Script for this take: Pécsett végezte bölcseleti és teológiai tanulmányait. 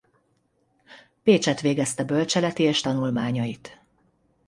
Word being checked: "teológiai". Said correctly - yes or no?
no